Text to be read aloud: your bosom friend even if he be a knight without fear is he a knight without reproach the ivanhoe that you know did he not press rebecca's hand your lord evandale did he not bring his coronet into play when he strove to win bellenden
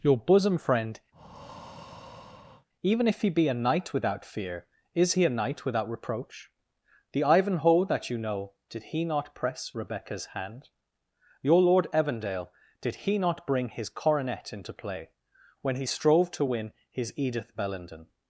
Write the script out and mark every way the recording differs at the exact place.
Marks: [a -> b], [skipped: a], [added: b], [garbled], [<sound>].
your bosom friend [breath] even if he be a knight without fear is he a knight without reproach the ivanhoe that you know did he not press rebecca's hand your lord evandale did he not bring his coronet into play when he strove to win [added: his edith] bellenden